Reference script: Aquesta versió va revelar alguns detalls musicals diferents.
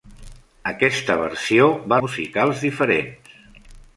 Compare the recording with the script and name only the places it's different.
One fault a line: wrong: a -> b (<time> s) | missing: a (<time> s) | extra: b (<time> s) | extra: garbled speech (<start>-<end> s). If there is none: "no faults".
missing: revelar alguns detalls (2.0 s)